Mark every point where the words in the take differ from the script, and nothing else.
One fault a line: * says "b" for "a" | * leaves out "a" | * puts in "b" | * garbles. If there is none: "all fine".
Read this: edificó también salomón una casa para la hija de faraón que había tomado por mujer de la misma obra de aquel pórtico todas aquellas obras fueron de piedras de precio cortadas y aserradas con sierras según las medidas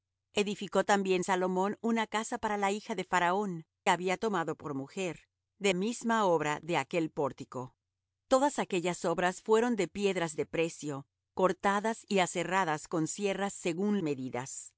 * leaves out "que"
* leaves out "la"
* leaves out "las"